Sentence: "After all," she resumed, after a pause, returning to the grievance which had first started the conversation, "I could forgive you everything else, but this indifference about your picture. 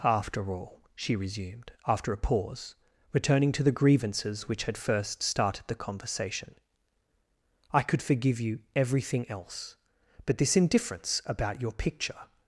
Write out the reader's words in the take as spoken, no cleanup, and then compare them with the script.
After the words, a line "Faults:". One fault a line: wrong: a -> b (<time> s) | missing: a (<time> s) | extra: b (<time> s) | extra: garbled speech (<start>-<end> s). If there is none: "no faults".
"After all," she resumed, after a pause, returning to the grievances which had first started the conversation, "I could forgive you everything else, but this indifference about your picture.
Faults:
wrong: grievance -> grievances (3.7 s)